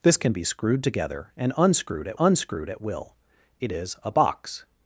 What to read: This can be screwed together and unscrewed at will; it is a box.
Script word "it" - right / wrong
right